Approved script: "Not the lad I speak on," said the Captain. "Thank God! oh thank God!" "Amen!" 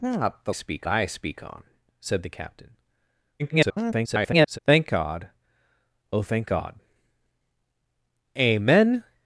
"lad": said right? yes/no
no